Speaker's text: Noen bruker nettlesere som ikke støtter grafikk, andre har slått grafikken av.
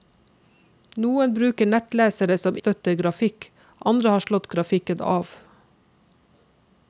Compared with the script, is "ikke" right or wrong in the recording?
wrong